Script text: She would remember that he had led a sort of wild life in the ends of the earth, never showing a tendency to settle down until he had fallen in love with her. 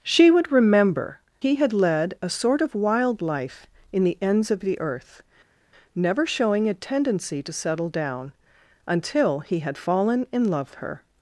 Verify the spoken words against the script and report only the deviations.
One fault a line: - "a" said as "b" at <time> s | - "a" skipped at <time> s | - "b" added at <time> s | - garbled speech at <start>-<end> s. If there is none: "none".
- "that" skipped at 1.2 s
- "with" skipped at 10.7 s